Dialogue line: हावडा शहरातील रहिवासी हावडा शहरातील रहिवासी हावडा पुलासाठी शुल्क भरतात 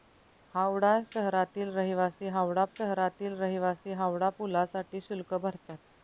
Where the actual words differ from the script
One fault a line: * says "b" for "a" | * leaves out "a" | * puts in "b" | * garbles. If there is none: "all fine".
all fine